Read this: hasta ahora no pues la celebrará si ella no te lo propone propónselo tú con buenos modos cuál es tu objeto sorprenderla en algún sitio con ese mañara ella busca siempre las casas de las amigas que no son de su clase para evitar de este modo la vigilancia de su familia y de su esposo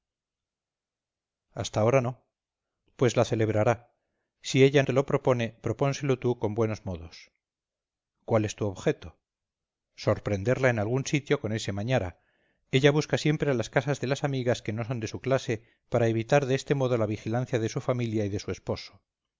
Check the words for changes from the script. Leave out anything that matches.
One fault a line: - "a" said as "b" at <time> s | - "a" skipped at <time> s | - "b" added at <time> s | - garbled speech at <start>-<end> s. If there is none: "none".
- "no" skipped at 4.8 s